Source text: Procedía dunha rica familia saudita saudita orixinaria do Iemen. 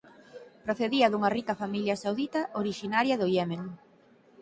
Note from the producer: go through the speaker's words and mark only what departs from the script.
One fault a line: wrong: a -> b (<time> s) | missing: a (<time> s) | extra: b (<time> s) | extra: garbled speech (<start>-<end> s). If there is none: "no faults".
missing: saudita (2.4 s)